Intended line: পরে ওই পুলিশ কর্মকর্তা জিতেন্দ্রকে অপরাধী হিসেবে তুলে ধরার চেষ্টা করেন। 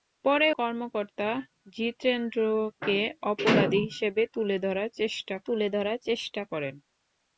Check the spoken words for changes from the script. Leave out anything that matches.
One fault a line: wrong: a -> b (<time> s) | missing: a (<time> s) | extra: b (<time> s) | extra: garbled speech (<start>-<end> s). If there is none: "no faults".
missing: ওই পুলিশ (0.5 s)
extra: তুলে ধরার চেষ্টা (5.5 s)